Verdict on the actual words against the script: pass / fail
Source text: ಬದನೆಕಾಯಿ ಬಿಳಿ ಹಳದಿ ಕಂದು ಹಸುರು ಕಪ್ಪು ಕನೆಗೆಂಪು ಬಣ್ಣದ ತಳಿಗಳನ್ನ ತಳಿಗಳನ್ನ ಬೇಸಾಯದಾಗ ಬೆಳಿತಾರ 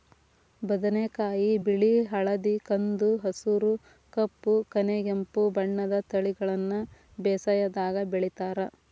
fail